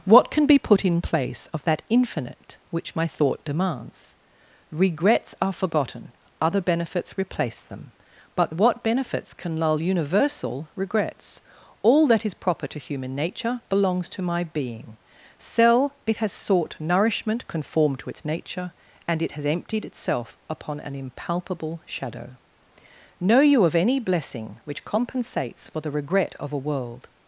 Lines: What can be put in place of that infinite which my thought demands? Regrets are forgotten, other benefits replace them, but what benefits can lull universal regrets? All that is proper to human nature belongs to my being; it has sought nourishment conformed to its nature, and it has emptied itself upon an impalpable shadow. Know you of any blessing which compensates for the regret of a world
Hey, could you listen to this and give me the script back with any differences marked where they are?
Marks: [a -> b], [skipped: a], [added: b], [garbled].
What can be put in place of that infinite which my thought demands? Regrets are forgotten, other benefits replace them, but what benefits can lull universal regrets? All that is proper to human nature belongs to my being; [added: cell] it has sought nourishment conformed to its nature, and it has emptied itself upon an impalpable shadow. Know you of any blessing which compensates for the regret of a world